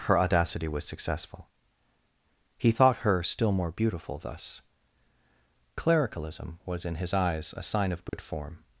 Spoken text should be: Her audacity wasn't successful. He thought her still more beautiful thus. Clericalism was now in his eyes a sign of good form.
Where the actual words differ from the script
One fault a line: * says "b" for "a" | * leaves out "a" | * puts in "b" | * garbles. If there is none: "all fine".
* says "was" for "wasn't"
* leaves out "now"